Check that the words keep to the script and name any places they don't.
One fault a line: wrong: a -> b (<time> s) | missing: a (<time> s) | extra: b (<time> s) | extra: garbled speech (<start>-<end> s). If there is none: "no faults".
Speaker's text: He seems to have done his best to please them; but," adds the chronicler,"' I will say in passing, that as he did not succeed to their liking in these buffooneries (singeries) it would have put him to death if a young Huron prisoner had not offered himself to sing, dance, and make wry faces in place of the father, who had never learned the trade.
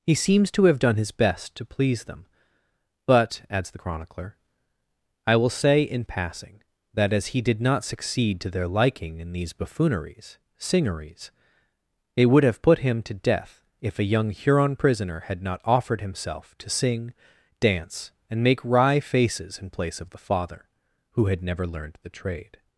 no faults